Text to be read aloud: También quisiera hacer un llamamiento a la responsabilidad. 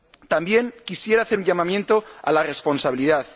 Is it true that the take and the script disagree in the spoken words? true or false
false